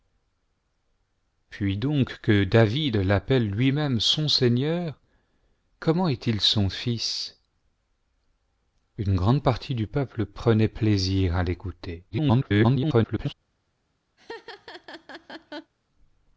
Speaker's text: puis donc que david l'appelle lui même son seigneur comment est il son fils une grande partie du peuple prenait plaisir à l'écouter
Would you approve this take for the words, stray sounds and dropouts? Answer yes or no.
no